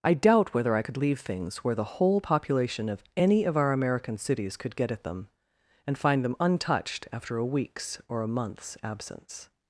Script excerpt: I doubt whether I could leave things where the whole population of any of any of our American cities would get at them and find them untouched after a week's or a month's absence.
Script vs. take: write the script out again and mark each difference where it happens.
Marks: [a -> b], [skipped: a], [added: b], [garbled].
I doubt whether I could leave things where the whole population of any of [skipped: any of] our American cities [would -> could] get at them and find them untouched after a week's or a month's absence.